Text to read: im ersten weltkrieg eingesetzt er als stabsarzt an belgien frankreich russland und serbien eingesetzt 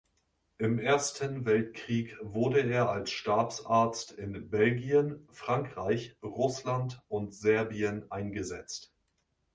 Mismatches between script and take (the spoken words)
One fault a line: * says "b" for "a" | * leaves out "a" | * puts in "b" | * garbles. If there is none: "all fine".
* says "wurde" for "eingesetzt"
* says "in" for "an"